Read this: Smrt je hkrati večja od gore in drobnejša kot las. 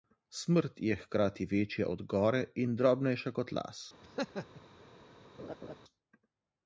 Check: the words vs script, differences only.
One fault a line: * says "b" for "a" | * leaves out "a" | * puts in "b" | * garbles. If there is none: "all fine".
all fine